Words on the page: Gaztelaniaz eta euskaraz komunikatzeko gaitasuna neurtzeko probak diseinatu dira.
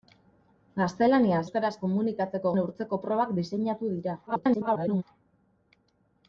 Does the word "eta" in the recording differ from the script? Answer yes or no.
yes